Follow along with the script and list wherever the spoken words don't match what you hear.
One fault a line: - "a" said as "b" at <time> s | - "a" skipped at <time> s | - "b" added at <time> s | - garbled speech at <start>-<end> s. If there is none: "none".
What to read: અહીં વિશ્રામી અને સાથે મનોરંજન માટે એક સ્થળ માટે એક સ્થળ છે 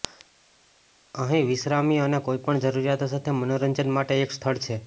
- "કોઈપણ જરૂરિયાતો" added at 2.3 s
- "માટે એક સ્થળ" skipped at 4.6 s